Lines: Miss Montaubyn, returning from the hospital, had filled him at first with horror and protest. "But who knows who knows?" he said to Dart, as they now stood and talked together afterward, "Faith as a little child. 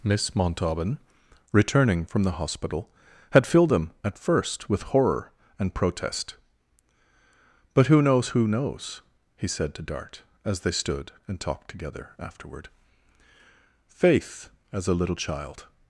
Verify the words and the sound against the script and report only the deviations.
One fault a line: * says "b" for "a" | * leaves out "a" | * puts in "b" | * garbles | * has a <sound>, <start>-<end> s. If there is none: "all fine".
* leaves out "now"